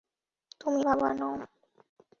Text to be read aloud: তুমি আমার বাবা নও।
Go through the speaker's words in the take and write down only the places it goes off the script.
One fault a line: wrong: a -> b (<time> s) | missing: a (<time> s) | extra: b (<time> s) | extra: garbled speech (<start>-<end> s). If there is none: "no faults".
missing: আমার (0.8 s)